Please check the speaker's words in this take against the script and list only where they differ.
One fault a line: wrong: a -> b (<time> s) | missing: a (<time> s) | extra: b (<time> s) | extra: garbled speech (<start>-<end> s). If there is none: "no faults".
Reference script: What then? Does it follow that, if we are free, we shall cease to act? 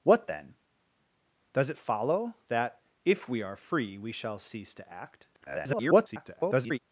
extra: garbled speech (5.3-6.8 s)